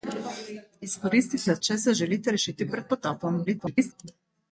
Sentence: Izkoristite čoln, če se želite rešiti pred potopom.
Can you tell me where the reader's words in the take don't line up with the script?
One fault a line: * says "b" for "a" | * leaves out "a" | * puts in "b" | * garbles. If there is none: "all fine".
* leaves out "čoln"
* garbles